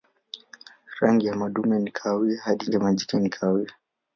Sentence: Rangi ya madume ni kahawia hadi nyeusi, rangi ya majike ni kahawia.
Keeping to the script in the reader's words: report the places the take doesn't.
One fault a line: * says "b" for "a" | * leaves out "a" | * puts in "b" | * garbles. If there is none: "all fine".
* leaves out "nyeusi rangi"